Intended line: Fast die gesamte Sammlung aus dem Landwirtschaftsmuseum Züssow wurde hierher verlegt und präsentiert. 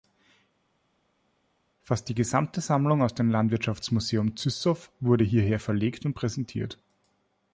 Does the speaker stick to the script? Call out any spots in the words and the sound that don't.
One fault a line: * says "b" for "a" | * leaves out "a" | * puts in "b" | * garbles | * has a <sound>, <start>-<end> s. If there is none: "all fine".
all fine